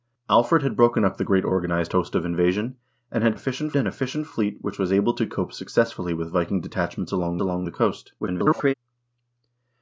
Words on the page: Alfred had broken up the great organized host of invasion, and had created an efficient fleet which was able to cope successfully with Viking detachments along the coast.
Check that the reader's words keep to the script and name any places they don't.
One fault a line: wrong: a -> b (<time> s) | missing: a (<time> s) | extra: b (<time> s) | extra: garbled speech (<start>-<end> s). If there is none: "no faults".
wrong: created -> efficient (3.3 s)
extra: along (7.4 s)
extra: garbled speech (8.2-8.7 s)